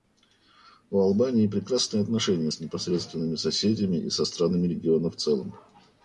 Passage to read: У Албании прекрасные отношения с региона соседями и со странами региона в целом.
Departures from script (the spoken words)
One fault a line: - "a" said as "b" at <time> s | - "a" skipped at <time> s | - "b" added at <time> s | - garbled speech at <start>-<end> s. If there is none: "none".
- "региона" said as "непосредственными" at 2.6 s